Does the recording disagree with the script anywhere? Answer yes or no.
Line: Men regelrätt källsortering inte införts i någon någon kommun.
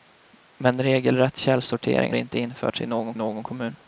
no